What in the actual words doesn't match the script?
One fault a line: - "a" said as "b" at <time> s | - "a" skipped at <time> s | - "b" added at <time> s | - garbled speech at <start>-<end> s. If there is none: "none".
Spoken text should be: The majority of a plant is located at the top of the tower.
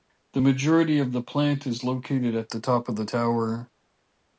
- "a" said as "the" at 1.1 s